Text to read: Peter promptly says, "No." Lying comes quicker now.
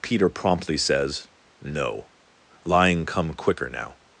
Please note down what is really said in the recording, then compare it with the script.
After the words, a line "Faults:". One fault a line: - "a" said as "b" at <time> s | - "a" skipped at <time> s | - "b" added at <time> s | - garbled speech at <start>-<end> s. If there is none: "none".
Peter promptly says, "No." Lying come quicker now.
Faults:
- "comes" said as "come" at 3.0 s